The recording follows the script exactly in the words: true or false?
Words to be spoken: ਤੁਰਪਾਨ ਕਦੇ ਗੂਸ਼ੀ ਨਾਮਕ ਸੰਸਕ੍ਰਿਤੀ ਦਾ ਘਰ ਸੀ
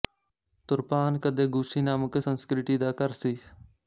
true